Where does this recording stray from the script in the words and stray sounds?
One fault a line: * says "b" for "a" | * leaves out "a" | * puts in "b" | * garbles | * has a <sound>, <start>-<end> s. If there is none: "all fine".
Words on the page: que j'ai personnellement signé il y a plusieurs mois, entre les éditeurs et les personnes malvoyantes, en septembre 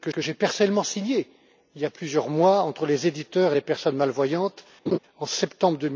* puts in "que"
* has a laugh, 4.9-5.0 s